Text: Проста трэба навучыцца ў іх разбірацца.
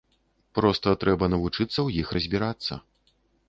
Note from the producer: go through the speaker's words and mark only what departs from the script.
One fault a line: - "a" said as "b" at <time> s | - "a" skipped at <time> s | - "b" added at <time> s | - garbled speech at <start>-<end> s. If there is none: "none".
none